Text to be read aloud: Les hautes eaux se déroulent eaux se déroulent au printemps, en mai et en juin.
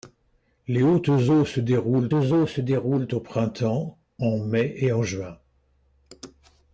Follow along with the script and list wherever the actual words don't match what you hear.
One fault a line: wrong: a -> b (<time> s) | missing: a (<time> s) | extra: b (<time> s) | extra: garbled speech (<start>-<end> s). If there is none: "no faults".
no faults